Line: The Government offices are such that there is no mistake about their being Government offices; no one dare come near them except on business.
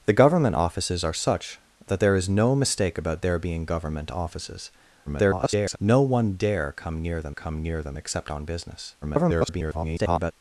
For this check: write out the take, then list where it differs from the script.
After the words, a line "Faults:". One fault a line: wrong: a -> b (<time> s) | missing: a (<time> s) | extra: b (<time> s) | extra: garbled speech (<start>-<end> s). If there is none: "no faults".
The Government offices are such that there is no mistake about their being Government offices; [garbled] no one dare come near them come near them except on business. [garbled]
Faults:
extra: garbled speech (5.1-5.8 s)
extra: come near them (7.3 s)
extra: garbled speech (9.0-10.3 s)